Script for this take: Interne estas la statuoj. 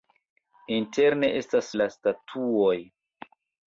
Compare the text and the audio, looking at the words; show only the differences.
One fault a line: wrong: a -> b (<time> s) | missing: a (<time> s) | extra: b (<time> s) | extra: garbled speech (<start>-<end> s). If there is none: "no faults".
no faults